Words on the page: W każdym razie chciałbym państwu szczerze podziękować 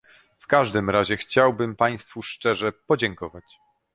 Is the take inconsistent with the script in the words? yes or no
no